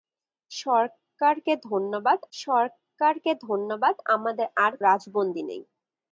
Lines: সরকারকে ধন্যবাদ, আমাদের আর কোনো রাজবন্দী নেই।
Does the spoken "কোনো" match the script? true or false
false